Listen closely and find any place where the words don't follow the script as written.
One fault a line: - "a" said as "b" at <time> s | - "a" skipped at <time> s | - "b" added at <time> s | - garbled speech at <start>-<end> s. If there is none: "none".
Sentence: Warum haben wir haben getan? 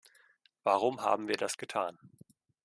- "haben" said as "das" at 1.4 s